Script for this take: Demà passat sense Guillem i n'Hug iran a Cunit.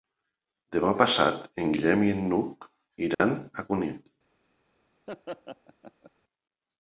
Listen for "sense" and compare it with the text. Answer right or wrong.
wrong